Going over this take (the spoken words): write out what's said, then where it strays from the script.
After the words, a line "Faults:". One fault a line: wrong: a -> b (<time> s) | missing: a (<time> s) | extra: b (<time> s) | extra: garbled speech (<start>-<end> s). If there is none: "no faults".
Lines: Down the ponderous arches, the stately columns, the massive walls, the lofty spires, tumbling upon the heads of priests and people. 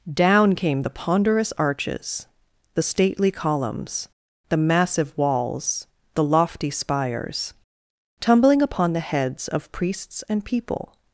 Down came the ponderous arches, the stately columns, the massive walls, the lofty spires, tumbling upon the heads of priests and people.
Faults:
extra: came (0.6 s)